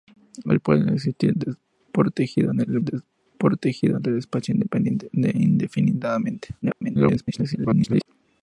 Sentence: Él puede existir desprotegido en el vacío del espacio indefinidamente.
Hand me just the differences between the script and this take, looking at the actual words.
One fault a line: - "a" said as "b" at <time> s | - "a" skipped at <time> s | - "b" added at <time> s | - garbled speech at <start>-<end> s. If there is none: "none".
- "vacío" said as "desprotegido" at 2.8 s
- garbled speech at 6.6-8.1 s